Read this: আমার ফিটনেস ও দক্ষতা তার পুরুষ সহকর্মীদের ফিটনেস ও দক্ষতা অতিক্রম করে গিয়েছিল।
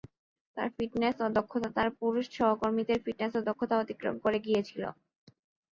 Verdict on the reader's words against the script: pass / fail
fail